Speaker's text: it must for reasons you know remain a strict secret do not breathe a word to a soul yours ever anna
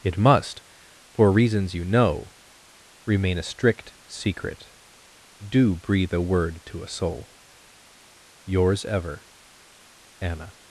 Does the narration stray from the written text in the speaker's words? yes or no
yes